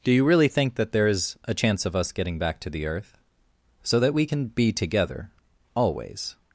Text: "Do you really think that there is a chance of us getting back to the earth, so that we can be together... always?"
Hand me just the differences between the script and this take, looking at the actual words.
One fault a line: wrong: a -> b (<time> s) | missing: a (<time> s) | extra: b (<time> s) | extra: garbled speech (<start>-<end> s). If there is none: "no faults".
no faults